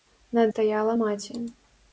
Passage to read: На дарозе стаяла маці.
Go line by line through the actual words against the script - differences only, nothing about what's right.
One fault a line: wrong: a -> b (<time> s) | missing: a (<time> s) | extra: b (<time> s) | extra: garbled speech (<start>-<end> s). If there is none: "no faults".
missing: дарозе (0.4 s)